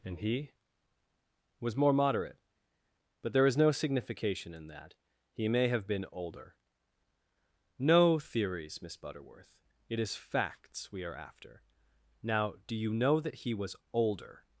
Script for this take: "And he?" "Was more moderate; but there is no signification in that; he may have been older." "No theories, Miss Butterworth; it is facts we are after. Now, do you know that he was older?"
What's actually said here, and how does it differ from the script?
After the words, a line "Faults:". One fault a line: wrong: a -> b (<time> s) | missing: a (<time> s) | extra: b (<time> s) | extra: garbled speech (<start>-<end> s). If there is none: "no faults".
"And he?" "Was more moderate; but there is no signification in that; he may have been older." "No theories, Miss Butterworth; it is facts we are after. Now, do you know that he was older?"
Faults:
no faults